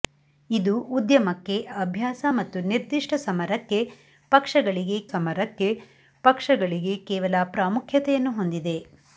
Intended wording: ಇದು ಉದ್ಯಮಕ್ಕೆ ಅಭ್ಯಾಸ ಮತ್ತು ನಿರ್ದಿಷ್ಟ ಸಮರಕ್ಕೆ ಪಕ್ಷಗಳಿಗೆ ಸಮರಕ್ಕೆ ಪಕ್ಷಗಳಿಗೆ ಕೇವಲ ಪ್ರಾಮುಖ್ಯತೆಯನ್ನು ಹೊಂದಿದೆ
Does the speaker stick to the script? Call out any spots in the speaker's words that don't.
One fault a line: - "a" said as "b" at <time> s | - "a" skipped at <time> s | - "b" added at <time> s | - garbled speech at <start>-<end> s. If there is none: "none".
none